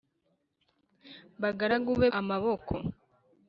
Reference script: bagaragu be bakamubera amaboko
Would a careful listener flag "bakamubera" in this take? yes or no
yes